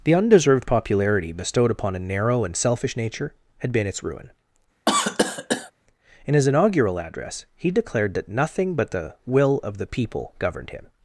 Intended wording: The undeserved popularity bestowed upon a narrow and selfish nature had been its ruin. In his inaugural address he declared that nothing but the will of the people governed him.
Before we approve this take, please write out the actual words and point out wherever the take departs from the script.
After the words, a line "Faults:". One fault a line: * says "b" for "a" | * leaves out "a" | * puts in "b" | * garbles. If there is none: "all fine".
The undeserved popularity bestowed upon a narrow and selfish nature had been its ruin. In his inaugural address he declared that nothing but the will of the people governed him.
Faults:
all fine